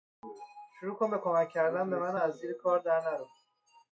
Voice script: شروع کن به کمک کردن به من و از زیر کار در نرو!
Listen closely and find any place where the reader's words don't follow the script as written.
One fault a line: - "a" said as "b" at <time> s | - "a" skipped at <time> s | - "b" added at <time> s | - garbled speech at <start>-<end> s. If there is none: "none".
none